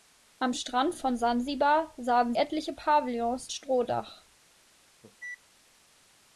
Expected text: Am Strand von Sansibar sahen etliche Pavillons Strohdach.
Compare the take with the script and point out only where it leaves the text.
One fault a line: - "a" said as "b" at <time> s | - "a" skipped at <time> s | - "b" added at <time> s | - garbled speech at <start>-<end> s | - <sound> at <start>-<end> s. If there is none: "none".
- cough at 5.0-5.4 s